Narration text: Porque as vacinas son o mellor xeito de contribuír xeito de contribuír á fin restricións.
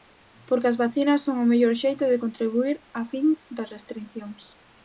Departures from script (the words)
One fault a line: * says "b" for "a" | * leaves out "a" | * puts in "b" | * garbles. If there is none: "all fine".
* leaves out "xeito de contribuír"
* puts in "das"